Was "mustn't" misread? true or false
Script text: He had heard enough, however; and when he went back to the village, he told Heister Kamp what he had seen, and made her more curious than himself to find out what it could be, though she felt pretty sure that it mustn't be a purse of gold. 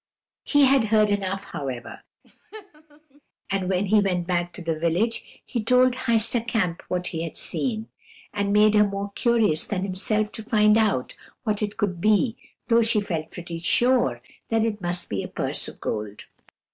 true